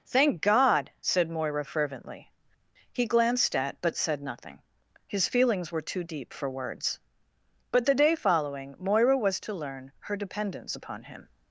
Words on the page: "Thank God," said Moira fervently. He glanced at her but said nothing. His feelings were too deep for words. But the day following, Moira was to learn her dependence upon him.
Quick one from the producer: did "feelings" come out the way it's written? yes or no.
yes